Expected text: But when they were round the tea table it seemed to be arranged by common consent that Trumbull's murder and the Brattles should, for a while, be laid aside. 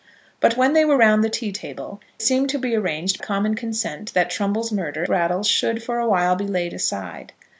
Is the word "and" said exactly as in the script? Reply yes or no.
no